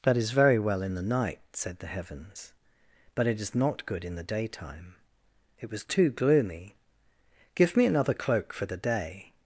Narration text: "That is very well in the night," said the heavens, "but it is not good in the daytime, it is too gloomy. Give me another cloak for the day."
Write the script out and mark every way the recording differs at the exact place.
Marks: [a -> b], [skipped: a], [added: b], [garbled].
"That is very well in the night," said the heavens, "but it is not good in the daytime, it [is -> was] too gloomy. Give me another cloak for the day."